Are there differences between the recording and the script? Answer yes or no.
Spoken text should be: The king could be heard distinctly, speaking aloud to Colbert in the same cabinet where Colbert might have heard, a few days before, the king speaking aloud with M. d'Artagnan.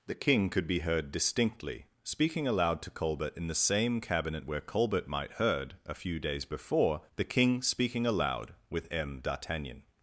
yes